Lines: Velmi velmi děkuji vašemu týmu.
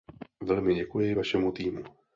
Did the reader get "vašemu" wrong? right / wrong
right